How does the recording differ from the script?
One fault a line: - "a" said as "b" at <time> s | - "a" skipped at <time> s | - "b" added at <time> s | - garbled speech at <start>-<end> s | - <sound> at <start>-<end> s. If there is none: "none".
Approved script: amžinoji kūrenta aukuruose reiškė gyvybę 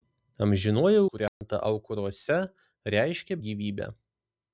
- dropout at 1.3-1.4 s